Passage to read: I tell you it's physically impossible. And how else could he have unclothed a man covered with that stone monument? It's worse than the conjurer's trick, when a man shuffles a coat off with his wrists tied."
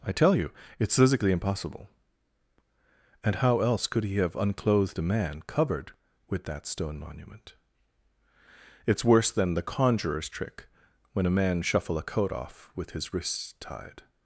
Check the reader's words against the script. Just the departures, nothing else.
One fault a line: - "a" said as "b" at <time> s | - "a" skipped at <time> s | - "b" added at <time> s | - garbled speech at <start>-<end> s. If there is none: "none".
- "shuffles" said as "shuffle" at 11.6 s